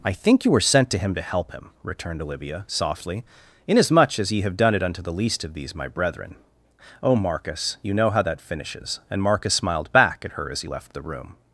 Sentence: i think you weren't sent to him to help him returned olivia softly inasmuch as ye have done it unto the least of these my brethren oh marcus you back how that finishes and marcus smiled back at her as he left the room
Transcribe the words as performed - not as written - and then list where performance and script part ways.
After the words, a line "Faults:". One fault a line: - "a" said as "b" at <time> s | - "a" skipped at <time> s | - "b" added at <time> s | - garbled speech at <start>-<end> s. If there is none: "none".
i think you were sent to him to help him returned olivia softly inasmuch as ye have done it unto the least of these my brethren oh marcus you know how that finishes and marcus smiled back at her as he left the room
Faults:
- "weren't" said as "were" at 0.5 s
- "back" said as "know" at 8.0 s